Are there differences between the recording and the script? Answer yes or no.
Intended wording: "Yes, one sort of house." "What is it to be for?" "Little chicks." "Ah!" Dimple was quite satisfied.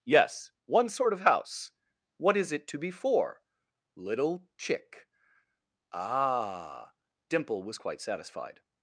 yes